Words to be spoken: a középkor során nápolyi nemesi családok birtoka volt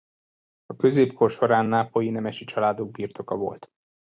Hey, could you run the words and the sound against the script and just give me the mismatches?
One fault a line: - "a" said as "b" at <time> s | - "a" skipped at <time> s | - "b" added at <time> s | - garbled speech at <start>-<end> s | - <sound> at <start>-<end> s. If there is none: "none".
none